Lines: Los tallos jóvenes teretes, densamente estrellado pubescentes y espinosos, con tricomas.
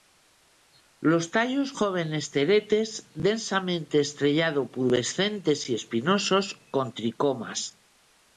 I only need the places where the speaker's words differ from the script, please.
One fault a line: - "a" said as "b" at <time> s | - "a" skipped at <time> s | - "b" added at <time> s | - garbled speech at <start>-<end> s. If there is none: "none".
none